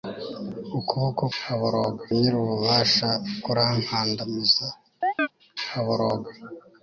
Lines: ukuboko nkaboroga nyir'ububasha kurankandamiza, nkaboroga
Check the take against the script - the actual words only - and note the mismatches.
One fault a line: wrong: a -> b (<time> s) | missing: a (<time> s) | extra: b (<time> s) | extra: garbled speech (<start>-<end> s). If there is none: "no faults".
no faults